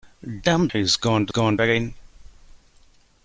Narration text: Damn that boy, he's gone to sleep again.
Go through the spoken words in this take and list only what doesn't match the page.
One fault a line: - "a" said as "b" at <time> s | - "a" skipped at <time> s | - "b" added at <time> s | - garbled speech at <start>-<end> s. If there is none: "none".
- "that boy" skipped at 0.7 s
- "sleep" said as "gone" at 1.3 s